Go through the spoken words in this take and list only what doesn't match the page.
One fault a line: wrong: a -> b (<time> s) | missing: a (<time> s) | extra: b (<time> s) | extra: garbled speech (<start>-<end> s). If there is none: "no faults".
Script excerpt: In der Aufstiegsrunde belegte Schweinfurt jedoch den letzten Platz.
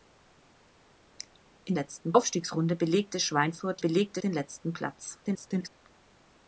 wrong: der -> letzten (1.7 s)
wrong: jedoch -> belegte (3.8 s)
extra: garbled speech (5.2-5.7 s)